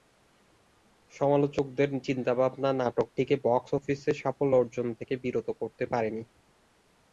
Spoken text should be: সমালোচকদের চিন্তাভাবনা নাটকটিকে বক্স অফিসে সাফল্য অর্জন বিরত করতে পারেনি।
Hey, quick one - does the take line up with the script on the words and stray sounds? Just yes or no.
no